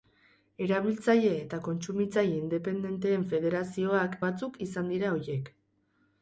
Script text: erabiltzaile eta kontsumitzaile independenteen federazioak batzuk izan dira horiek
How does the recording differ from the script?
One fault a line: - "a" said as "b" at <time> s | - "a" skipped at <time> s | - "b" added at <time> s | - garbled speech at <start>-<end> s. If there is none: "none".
none